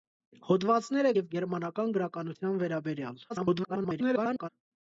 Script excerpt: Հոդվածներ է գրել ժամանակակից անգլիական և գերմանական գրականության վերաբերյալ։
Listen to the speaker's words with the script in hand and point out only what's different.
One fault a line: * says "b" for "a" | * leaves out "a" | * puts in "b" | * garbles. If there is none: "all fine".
* leaves out "գրել ժամանակակից անգլիական"
* garbles